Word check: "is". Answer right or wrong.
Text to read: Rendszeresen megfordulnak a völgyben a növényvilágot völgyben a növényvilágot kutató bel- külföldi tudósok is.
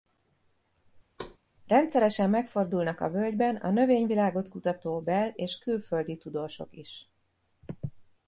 right